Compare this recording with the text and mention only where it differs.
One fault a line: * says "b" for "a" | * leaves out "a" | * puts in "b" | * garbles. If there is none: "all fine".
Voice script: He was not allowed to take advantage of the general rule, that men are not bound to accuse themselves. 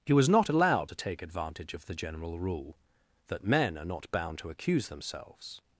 all fine